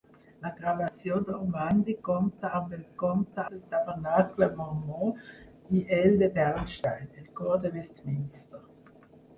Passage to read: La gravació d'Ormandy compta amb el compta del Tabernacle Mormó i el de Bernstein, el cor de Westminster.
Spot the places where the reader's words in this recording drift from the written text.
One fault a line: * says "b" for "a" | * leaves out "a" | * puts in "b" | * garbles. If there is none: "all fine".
all fine